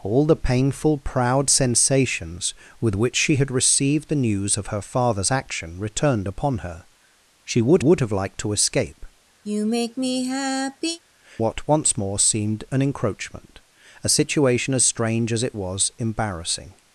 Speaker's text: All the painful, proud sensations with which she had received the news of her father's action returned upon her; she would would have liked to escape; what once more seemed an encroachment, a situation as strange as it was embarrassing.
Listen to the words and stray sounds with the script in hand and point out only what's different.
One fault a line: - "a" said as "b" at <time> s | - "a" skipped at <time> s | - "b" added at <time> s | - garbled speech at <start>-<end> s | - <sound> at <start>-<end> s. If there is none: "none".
- sigh at 9.4-11.0 s